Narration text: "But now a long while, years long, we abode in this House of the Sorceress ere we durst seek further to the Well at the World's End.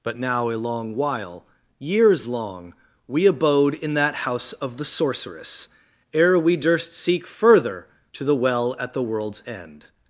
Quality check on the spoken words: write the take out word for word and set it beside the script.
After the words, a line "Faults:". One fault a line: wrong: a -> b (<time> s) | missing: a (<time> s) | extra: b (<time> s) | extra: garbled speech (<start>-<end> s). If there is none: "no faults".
"But now a long while, years long, we abode in that House of the Sorceress ere we durst seek further to the Well at the World's End.
Faults:
wrong: this -> that (3.9 s)